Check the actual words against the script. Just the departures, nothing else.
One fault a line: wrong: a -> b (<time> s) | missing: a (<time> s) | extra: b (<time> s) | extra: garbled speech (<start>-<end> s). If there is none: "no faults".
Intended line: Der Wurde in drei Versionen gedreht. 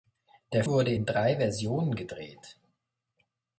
no faults